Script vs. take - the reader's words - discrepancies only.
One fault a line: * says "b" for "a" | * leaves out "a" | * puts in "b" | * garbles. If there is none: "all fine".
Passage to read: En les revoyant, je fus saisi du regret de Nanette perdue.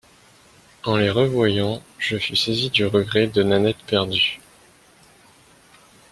all fine